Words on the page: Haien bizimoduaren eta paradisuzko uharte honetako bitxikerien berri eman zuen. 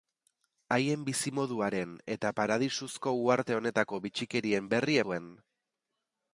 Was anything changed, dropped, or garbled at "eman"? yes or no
yes